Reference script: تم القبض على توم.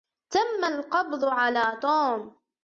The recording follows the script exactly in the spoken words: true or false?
true